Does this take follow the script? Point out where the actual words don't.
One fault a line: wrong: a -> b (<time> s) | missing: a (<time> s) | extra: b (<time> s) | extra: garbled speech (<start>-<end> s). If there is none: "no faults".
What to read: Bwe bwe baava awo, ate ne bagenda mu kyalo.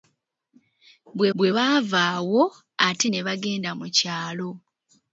no faults